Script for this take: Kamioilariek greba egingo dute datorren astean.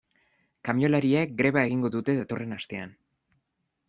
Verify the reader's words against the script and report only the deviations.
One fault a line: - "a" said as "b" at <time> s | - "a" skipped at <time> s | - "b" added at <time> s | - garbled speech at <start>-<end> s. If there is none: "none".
none